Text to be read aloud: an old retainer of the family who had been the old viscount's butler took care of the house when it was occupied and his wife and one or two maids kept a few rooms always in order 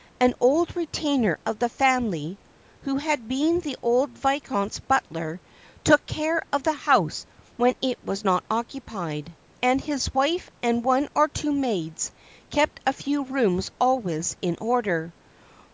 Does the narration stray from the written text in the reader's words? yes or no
yes